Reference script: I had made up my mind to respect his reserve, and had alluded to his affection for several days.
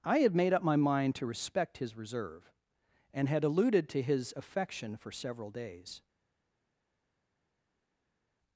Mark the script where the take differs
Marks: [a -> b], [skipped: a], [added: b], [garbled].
I had made up my mind to respect his reserve, and had alluded to his affection for several days.